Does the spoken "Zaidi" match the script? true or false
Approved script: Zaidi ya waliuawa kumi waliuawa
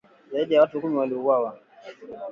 true